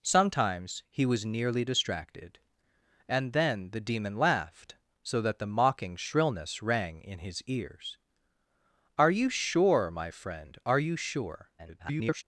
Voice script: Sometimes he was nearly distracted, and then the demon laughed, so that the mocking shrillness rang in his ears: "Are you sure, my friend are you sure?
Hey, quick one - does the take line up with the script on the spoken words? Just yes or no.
no